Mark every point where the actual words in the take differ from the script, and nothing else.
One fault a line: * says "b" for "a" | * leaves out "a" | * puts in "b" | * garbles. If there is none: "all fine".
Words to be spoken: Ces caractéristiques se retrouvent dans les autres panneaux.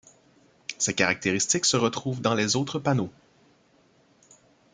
all fine